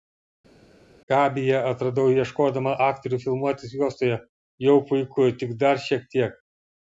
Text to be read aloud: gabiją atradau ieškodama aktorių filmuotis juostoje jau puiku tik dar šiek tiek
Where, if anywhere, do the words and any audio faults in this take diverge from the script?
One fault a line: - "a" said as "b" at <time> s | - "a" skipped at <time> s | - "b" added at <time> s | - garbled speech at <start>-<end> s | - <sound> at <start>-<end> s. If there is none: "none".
none